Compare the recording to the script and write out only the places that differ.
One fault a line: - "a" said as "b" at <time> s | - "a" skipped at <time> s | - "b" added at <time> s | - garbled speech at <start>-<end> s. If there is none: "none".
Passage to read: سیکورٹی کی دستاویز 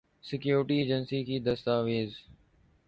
- "ایجنسی" added at 0.8 s